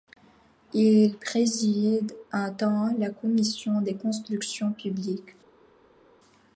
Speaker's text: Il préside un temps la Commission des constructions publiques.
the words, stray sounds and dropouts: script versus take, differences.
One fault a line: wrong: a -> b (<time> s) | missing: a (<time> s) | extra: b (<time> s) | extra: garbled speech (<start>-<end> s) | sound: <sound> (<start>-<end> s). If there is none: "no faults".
no faults